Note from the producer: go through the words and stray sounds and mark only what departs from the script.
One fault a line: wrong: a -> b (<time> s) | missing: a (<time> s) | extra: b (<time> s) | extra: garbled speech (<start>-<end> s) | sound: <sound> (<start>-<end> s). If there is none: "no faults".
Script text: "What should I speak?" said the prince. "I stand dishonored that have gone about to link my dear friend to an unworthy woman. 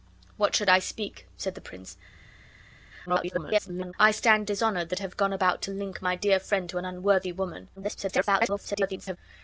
extra: garbled speech (3.1-3.9 s)
extra: garbled speech (7.8-9.2 s)